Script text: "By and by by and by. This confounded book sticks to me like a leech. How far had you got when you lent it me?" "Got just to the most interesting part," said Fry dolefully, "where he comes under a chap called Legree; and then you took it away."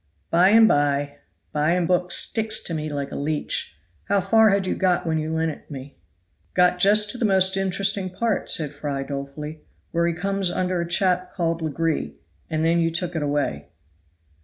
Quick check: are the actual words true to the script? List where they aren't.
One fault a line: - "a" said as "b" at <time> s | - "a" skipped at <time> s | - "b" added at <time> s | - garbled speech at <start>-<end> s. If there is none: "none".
- "by This confounded" skipped at 1.9 s